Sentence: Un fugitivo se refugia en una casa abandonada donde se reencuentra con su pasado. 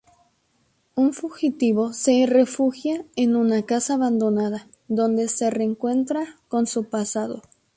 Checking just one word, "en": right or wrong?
right